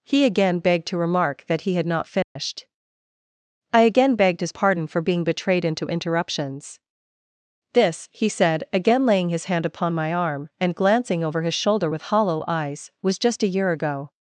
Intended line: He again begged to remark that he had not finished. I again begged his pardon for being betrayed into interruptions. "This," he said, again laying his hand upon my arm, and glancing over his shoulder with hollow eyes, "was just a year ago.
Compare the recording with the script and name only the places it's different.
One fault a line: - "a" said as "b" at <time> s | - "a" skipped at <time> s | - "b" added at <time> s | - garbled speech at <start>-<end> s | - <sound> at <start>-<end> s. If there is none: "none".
- dropout at 2.2-2.4 s